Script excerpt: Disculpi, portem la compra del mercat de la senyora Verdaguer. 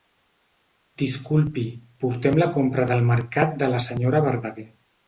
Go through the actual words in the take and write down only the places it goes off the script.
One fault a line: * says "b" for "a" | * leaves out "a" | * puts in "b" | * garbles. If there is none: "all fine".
all fine